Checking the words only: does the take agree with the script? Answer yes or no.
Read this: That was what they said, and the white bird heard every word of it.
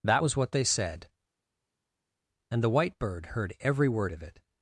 yes